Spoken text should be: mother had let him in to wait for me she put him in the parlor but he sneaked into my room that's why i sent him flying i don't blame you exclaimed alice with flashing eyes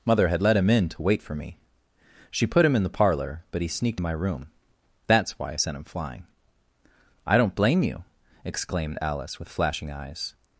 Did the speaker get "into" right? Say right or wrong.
wrong